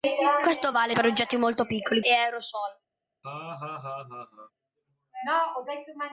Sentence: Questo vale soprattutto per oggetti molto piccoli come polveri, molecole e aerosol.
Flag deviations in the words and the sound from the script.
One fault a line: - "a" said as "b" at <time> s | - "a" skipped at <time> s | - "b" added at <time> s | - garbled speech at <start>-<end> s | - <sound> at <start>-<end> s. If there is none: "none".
- "soprattutto" skipped at 1.0 s
- "come polveri molecole" skipped at 2.0 s
- laugh at 3.2-4.5 s